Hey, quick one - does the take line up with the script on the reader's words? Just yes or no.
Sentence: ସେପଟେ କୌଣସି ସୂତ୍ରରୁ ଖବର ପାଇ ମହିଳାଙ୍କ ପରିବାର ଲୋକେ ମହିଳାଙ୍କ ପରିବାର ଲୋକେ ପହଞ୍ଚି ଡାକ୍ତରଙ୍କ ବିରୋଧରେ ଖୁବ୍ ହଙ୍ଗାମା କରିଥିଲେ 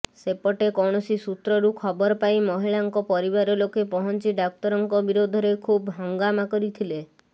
no